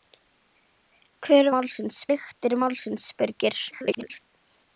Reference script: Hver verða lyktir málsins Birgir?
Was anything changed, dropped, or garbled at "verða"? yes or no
yes